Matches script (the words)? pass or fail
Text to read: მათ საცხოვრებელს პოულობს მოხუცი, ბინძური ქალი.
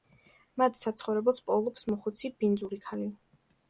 pass